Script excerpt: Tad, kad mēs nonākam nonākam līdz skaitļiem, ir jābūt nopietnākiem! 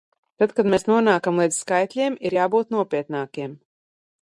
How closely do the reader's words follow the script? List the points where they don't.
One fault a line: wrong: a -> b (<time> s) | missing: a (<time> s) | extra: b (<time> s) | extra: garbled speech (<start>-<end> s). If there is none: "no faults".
missing: nonākam (1.4 s)